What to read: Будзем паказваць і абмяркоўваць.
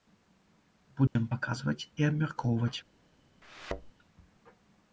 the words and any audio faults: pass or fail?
fail